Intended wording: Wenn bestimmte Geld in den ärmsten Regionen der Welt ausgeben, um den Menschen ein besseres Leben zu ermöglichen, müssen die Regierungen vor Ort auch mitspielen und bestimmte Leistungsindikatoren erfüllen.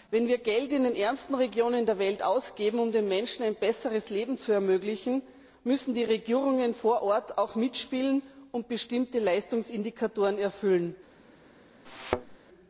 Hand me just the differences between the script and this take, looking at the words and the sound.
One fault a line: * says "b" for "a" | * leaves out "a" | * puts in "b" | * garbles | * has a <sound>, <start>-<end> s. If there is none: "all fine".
* says "wir" for "bestimmte"
* has a thud, 11.9-12.4 s